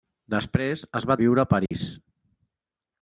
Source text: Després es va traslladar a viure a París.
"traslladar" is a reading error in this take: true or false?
true